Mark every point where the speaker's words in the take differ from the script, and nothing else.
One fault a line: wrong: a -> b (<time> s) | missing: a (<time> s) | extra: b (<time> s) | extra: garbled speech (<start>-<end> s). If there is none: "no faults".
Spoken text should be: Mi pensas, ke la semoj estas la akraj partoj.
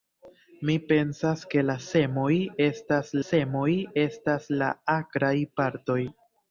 extra: semoj estas (3.3 s)